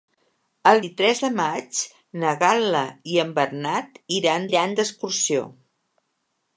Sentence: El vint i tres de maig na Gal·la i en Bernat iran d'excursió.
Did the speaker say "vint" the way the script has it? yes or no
no